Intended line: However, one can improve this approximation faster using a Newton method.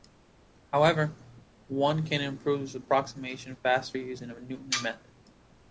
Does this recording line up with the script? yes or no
yes